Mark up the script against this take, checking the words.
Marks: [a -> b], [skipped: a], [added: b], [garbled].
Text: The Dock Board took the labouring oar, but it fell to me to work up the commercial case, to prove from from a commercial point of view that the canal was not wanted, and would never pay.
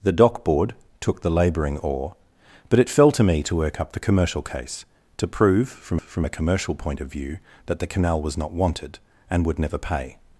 The Dock Board took the labouring oar, but it fell to me to work up the commercial case, to prove from from a commercial point of view that the canal was not wanted, and would never pay.